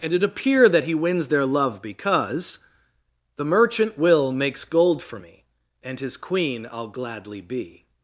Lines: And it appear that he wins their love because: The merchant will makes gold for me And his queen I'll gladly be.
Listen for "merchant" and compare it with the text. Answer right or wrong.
right